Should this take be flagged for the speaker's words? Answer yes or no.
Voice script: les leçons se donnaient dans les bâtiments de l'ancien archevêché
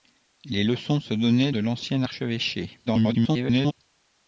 yes